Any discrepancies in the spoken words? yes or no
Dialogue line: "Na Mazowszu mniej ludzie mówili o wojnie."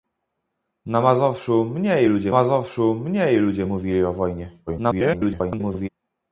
yes